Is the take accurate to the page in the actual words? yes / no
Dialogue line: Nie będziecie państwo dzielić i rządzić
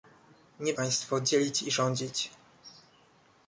no